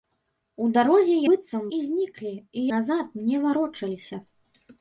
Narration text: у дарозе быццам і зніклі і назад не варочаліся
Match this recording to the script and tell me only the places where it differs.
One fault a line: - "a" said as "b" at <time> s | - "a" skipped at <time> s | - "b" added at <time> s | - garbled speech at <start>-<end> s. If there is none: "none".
none